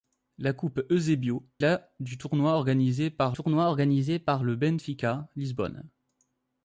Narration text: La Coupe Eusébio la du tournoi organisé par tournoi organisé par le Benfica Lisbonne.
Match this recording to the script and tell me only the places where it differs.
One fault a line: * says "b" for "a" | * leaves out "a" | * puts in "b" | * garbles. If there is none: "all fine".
all fine